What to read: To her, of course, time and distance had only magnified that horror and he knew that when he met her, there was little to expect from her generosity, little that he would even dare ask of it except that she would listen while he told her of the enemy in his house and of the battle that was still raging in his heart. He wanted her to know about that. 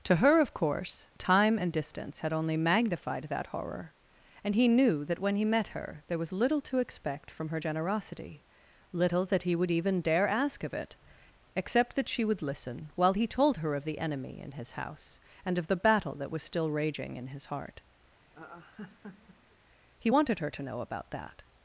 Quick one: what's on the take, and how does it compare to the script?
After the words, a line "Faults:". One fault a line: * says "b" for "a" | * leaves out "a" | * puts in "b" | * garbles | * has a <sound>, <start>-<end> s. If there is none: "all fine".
To her, of course, time and distance had only magnified that horror and he knew that when he met her, there was little to expect from her generosity, little that he would even dare ask of it except that she would listen while he told her of the enemy in his house and of the battle that was still raging in his heart. He wanted her to know about that.
Faults:
* has a laugh, 18.2-19.6 s